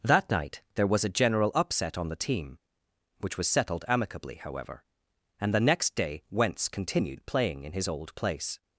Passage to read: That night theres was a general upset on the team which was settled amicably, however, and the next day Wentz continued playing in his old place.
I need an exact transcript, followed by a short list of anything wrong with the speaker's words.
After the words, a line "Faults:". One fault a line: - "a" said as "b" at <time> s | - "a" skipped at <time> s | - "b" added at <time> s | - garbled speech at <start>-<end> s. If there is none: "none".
That night there was a general upset on the team which was settled amicably, however, and the next day Wentz continued playing in his old place.
Faults:
- "theres" said as "there" at 0.8 s